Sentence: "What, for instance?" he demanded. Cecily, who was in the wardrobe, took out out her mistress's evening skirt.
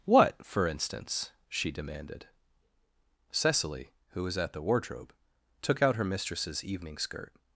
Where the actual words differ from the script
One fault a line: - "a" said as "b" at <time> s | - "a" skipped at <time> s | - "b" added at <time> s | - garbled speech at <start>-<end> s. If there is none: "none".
- "he" said as "she" at 1.5 s
- "in" said as "at" at 4.3 s
- "out" skipped at 6.0 s